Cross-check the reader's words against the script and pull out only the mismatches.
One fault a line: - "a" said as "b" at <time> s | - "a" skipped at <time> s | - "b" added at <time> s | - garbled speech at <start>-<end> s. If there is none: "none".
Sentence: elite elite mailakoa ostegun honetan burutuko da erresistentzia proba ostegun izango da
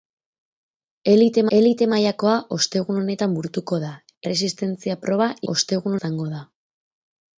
none